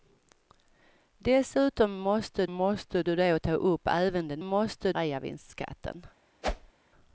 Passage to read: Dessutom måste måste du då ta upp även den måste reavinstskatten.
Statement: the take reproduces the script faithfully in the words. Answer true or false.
true